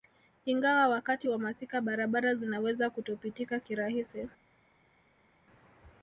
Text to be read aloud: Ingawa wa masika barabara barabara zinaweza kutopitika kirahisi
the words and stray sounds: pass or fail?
fail